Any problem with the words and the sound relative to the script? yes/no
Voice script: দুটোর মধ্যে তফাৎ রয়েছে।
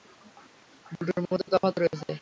no